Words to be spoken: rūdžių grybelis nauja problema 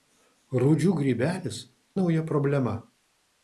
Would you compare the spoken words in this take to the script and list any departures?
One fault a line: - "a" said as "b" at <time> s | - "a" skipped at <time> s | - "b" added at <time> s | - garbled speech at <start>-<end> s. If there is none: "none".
none